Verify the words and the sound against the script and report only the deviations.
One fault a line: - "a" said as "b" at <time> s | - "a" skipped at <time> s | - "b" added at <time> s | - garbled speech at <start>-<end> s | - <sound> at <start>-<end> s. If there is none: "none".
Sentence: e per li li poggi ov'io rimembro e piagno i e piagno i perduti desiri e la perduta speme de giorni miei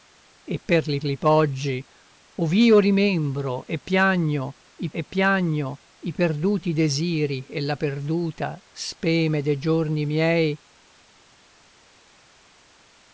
none